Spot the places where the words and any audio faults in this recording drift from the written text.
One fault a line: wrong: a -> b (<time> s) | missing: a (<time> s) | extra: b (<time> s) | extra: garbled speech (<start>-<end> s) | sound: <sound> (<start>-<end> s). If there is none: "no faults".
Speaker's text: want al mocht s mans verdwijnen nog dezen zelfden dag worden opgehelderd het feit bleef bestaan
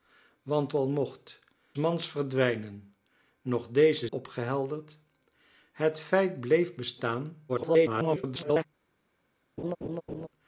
missing: s (1.4 s)
missing: zelfden dag worden (4.1 s)
extra: garbled speech (7.5-8.7 s)
sound: laugh (9.6-10.3 s)